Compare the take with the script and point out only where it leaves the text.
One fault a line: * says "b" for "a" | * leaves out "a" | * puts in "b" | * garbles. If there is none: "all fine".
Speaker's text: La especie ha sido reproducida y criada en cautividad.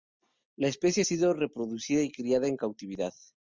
all fine